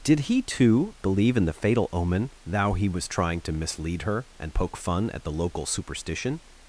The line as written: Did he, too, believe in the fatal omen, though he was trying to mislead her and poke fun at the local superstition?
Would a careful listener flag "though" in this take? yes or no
yes